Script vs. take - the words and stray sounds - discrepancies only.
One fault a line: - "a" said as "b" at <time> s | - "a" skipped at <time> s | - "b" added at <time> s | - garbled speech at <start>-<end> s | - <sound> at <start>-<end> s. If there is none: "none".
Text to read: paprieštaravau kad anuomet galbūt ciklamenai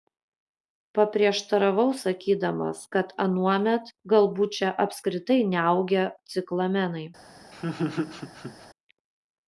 - "sakydamas" added at 2.0 s
- "čia apskritai neaugę" added at 4.6 s
- laugh at 7.5-8.7 s